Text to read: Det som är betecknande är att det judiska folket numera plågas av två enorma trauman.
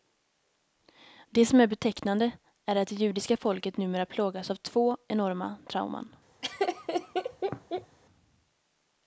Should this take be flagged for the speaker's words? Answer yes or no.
no